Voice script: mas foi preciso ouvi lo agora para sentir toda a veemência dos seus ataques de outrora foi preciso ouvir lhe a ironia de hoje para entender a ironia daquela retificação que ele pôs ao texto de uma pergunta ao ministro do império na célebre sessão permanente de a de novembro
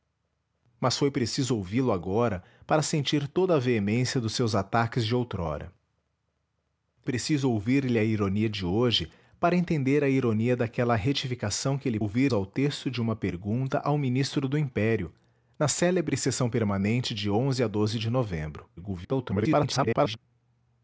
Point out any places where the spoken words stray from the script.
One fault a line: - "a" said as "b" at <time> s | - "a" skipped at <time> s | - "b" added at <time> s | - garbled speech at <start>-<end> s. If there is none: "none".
- "foi" skipped at 5.7 s
- "pôs" said as "ouvir" at 12.0 s
- garbled speech at 18.8-20.2 s